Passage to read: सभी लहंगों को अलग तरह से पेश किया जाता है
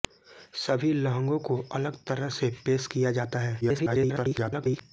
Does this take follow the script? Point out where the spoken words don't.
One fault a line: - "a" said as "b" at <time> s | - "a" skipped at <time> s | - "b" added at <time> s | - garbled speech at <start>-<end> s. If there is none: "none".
- garbled speech at 3.6-4.8 s